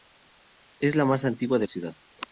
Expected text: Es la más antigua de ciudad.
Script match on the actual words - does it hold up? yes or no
yes